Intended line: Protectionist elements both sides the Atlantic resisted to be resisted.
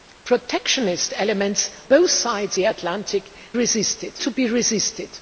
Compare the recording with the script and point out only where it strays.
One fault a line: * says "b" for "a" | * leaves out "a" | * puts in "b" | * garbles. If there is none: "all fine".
all fine